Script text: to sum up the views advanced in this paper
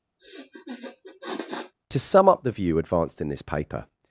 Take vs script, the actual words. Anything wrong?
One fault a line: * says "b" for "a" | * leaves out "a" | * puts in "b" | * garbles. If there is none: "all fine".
* says "view" for "views"